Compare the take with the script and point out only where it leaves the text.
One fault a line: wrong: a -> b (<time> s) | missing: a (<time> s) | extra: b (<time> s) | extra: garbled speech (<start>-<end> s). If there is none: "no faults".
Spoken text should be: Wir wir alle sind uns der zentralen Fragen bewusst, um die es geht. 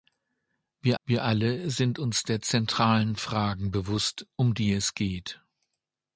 no faults